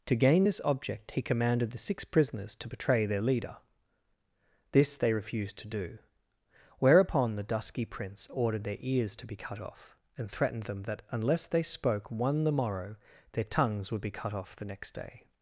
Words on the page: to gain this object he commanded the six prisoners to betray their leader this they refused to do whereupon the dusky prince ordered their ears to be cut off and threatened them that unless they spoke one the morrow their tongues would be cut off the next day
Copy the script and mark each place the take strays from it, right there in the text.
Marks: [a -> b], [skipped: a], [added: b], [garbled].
to gain this object he commanded the six prisoners to betray their leader this they refused to do whereupon the dusky prince ordered their ears to be cut off and threatened them that unless they spoke one the morrow their tongues would be cut off the next day